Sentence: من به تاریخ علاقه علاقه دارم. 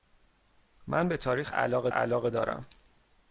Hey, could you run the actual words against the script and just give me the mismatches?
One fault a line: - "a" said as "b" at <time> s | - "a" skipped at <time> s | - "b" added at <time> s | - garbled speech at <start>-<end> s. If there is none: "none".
none